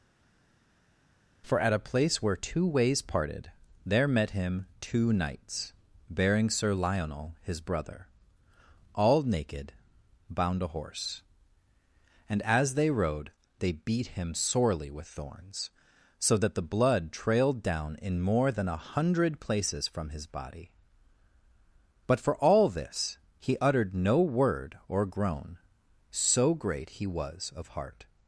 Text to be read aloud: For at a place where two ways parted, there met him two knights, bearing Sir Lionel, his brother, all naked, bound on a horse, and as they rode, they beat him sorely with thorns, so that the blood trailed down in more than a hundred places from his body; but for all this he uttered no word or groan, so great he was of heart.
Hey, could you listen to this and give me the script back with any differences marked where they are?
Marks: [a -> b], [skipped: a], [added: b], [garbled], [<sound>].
For at a place where two ways parted, there met him two knights, bearing Sir Lionel, his brother, all naked, bound [skipped: on] a horse, and as they rode, they beat him sorely with thorns, so that the blood trailed down in more than a hundred places from his body; but for all this he uttered no word or groan, so great he was of heart.